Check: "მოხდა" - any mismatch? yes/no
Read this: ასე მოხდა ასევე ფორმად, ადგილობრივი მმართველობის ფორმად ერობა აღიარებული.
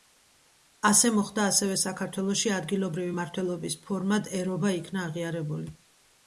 no